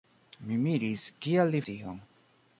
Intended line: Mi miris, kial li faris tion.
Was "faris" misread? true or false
true